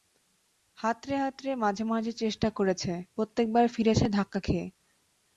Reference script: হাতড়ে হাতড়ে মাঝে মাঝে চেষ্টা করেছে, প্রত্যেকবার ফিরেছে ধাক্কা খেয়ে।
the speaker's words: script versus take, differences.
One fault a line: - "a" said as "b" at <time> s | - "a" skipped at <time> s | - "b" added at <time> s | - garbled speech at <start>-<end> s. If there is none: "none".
none